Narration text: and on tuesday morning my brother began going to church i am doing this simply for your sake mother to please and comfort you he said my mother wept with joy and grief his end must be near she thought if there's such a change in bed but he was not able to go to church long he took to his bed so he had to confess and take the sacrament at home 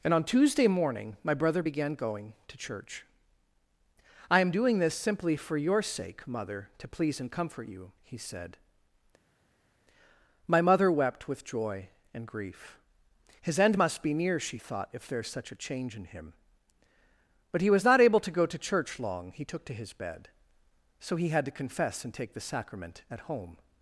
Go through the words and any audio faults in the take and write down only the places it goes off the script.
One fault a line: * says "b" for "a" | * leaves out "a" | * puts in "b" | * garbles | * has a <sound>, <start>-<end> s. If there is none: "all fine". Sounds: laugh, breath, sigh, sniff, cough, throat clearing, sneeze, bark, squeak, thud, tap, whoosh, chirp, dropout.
* says "him" for "bed"